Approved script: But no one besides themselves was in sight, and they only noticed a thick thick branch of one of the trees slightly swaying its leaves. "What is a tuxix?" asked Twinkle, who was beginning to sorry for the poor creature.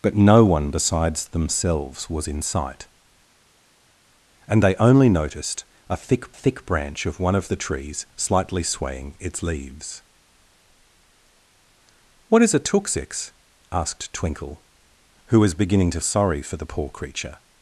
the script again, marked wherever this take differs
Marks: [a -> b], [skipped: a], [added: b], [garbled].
But no one besides themselves was in sight, and they only noticed a thick thick branch of one of the trees slightly swaying its leaves. "What is a tuxix?" asked Twinkle, who was beginning to sorry for the poor creature.